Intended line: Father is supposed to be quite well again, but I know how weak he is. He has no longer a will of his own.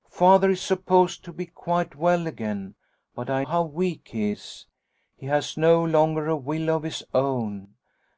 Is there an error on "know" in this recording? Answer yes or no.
yes